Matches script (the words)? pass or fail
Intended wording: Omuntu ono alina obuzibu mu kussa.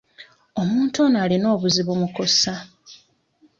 pass